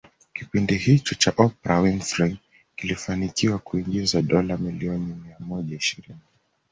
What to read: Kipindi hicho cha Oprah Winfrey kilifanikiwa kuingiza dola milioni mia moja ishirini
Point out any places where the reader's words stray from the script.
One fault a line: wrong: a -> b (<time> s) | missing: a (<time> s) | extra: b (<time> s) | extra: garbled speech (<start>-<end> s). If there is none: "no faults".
no faults